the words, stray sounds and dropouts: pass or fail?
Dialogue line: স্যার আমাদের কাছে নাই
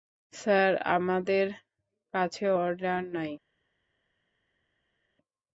fail